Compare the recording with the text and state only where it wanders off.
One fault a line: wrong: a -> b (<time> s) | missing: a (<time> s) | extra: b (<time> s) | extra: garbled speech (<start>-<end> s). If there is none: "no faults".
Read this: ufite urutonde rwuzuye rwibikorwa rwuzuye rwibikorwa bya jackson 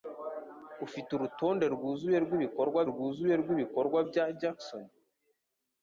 no faults